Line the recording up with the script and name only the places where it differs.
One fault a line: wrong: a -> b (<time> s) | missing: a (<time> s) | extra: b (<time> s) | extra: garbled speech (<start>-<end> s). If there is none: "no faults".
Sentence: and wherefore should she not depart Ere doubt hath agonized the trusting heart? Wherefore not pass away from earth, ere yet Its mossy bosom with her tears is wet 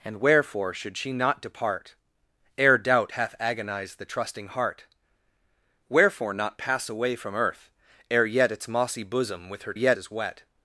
wrong: tears -> yet (9.7 s)